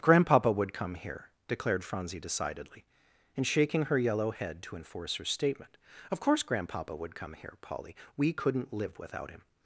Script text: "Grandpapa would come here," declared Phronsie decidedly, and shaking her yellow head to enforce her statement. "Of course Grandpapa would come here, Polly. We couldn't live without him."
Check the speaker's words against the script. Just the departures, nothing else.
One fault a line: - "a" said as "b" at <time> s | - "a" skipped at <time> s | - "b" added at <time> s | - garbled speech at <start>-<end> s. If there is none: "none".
none